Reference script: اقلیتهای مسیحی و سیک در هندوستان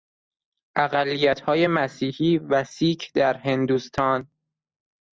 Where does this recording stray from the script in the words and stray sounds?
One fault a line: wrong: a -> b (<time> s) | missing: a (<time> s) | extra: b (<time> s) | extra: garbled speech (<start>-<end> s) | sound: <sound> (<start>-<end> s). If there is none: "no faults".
no faults